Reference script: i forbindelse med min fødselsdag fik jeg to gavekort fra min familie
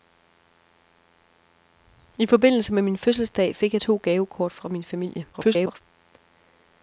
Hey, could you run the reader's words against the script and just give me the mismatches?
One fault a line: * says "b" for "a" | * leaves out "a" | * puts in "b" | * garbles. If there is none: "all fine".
* garbles